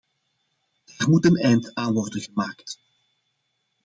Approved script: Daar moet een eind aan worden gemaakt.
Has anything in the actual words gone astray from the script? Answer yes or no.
no